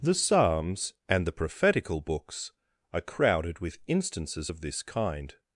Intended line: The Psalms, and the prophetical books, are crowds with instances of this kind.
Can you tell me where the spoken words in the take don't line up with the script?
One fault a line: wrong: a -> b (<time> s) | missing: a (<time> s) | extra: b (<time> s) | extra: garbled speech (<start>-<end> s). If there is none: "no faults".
wrong: crowds -> crowded (3.0 s)